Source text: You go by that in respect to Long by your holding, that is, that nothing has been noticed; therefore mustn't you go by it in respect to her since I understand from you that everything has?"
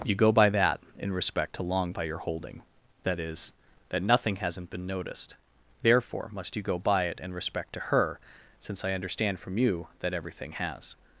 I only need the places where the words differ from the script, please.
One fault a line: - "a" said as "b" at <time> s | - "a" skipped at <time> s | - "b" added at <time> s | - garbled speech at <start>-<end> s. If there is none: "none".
- "has" said as "hasn't" at 4.4 s
- "mustn't" said as "must" at 6.3 s